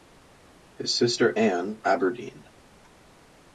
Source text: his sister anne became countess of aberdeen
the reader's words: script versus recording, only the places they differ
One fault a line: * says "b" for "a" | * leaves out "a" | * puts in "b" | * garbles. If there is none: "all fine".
* leaves out "became countess of"